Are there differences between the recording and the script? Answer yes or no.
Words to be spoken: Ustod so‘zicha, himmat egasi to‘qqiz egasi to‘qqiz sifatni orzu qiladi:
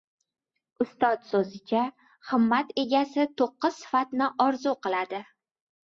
yes